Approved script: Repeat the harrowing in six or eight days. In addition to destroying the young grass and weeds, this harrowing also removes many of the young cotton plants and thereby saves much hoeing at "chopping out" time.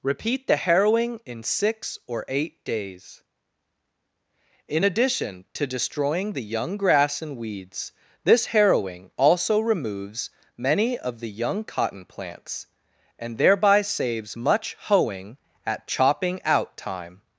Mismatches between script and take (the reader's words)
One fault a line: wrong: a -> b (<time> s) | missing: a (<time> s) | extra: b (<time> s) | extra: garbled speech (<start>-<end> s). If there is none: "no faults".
no faults